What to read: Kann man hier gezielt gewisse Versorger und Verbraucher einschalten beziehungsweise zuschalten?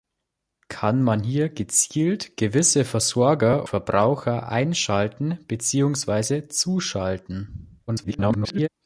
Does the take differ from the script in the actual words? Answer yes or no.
yes